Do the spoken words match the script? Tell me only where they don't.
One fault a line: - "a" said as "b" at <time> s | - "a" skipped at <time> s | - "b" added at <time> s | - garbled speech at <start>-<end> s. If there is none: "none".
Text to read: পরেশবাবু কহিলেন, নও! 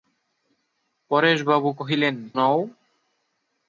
none